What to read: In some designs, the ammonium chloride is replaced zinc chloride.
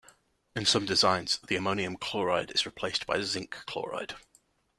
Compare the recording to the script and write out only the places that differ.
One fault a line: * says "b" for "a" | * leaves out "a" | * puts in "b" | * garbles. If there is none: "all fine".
* puts in "by"